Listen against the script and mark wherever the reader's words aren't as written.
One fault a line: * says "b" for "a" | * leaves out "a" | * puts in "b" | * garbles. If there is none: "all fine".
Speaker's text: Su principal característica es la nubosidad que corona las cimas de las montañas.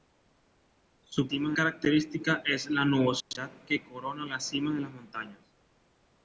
* says "cimas" for "principal"